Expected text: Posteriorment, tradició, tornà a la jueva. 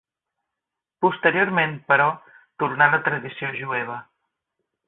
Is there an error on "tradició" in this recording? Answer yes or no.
yes